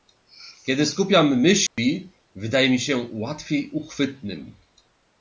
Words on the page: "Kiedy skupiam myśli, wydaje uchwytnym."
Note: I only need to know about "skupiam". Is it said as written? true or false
true